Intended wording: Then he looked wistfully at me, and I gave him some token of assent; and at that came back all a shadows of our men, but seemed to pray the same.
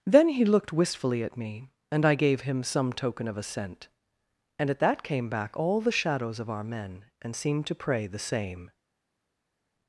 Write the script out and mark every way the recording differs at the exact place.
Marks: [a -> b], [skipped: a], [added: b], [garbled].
Then he looked wistfully at me, and I gave him some token of assent; and at that came back all [a -> the] shadows of our men, [but -> and] seemed to pray the same.